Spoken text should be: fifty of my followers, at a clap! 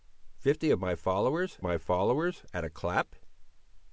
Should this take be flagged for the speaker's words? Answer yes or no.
yes